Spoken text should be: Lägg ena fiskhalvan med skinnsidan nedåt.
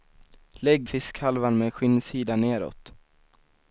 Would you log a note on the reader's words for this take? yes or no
yes